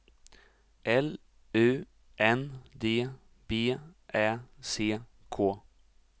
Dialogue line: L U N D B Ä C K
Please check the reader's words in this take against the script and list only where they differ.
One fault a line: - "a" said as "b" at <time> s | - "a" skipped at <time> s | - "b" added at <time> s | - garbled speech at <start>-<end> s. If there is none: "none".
none